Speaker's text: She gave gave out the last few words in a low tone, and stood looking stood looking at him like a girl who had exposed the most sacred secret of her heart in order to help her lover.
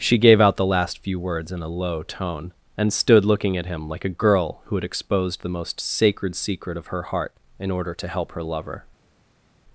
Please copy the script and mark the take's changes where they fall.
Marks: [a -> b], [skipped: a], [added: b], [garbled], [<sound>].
She gave [skipped: gave] out the last few words in a low tone, and stood looking [skipped: stood looking] at him like a girl who had exposed the most sacred secret of her heart in order to help her lover.